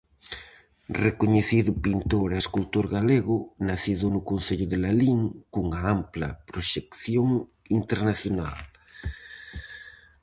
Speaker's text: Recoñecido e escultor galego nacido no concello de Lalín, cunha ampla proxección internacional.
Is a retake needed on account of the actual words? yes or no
yes